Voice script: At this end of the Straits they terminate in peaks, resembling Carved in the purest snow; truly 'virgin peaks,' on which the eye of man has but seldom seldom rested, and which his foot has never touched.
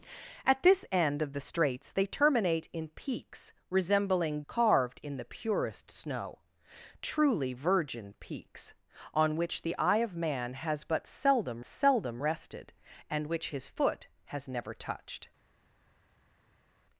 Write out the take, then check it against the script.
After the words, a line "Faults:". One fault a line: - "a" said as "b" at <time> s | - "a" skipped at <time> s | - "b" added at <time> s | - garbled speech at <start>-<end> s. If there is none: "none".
At this end of the Straits they terminate in peaks, resembling Carved in the purest snow; truly 'virgin peaks,' on which the eye of man has but seldom seldom rested, and which his foot has never touched.
Faults:
none